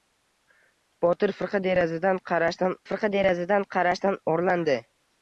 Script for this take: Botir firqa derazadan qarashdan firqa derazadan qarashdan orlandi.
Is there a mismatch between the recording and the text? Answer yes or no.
no